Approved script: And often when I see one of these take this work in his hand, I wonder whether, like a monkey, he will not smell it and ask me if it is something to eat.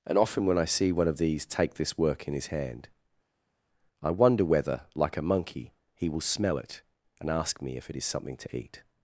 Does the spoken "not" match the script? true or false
false